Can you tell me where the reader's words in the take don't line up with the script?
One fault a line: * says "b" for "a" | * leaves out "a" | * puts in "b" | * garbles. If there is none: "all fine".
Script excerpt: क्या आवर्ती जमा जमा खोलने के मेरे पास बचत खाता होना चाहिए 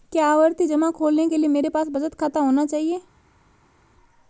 * leaves out "जमा"
* puts in "लिए"